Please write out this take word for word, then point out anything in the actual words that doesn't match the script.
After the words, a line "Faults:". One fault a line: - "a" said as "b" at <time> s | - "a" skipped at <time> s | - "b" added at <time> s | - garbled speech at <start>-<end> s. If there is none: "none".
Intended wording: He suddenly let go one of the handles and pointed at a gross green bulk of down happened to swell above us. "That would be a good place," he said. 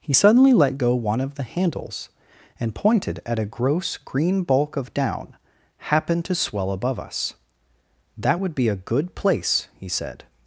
He suddenly let go one of the handles and pointed at a gross green bulk of down happened to swell above us. "That would be a good place," he said.
Faults:
none